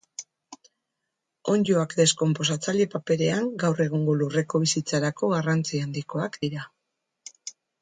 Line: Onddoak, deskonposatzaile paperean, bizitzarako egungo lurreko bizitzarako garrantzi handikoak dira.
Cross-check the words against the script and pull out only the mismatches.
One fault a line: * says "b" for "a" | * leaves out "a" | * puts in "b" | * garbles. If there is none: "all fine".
* says "gaur" for "bizitzarako"